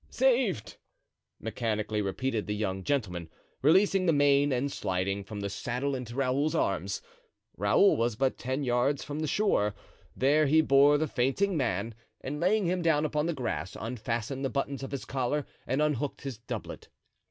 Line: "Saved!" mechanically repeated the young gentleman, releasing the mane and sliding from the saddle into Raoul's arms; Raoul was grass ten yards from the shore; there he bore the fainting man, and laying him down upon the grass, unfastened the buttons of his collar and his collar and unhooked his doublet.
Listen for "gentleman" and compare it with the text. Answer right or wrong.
right